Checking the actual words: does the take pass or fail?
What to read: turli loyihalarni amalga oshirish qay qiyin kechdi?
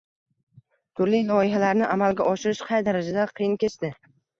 fail